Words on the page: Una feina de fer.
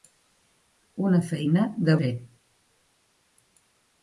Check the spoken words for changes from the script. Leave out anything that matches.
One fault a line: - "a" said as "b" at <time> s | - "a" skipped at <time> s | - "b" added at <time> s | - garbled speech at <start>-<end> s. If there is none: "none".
none